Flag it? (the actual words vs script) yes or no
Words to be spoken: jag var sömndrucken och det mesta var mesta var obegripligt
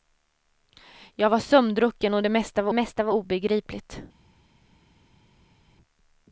no